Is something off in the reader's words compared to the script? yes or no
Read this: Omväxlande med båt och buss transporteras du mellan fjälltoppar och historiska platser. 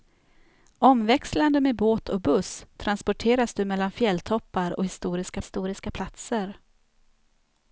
yes